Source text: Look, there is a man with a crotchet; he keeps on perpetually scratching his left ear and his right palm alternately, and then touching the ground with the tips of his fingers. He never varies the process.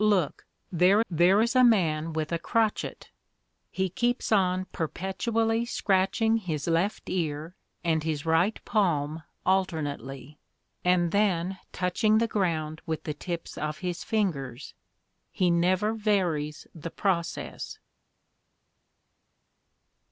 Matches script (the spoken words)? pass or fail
fail